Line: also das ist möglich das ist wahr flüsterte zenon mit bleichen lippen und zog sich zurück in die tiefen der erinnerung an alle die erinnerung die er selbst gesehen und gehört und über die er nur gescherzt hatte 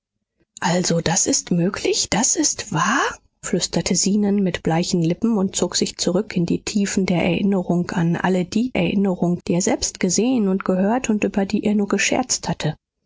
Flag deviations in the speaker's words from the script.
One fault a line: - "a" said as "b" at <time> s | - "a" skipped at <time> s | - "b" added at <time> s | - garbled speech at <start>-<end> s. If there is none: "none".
none